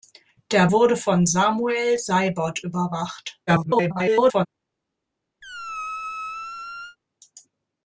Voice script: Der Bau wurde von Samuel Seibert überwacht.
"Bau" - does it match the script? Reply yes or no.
no